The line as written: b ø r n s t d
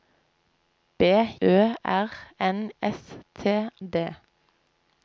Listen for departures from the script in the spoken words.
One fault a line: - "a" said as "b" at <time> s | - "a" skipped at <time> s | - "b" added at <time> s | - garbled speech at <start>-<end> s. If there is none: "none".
none